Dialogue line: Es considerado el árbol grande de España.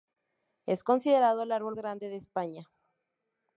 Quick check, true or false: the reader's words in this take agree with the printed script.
true